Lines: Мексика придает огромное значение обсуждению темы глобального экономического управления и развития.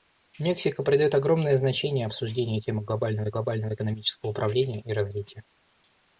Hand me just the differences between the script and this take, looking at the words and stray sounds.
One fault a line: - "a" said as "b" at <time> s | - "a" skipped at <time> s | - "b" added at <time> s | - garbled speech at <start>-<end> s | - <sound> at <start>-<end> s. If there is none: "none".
- "глобального" added at 3.3 s